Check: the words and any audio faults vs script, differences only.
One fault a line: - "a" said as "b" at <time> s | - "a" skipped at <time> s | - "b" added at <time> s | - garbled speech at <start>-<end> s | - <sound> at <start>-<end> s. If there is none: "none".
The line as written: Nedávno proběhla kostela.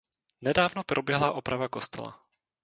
- "oprava" added at 1.3 s